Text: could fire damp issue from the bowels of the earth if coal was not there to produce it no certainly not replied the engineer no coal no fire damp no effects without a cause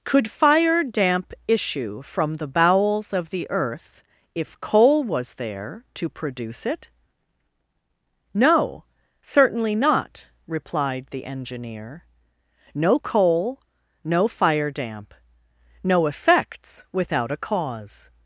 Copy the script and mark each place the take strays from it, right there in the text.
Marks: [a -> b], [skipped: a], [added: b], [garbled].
could fire damp issue from the bowels of the earth if coal was [skipped: not] there to produce it no certainly not replied the engineer no coal no fire damp no effects without a cause